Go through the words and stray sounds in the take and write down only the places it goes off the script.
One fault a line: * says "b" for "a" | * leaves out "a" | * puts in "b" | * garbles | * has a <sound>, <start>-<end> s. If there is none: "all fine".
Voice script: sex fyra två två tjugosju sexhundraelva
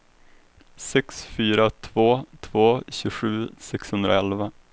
all fine